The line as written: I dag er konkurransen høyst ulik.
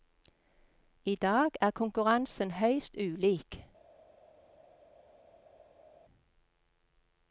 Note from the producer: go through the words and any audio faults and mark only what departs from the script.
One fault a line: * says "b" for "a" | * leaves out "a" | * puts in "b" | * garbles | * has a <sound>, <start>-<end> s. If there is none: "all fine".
all fine